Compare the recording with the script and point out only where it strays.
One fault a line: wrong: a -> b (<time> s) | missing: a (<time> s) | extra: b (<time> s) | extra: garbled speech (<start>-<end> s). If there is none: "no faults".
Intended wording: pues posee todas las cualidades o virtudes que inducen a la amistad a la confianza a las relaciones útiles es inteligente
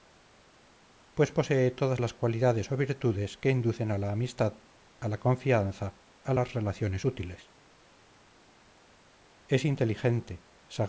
no faults